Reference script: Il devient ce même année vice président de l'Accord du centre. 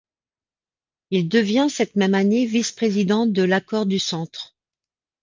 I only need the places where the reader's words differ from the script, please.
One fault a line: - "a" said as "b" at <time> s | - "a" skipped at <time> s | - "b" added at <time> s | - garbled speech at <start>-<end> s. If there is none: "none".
- "ce" said as "cette" at 1.7 s